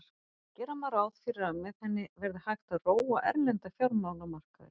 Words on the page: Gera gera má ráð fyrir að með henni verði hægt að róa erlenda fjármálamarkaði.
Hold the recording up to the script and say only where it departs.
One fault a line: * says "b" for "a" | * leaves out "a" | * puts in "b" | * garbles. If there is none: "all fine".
* leaves out "gera"